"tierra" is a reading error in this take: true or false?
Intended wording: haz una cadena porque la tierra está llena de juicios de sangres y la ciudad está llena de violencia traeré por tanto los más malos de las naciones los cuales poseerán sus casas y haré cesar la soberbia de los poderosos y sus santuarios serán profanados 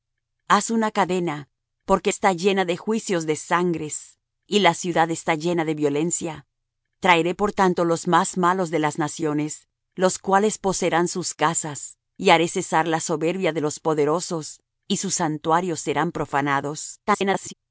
true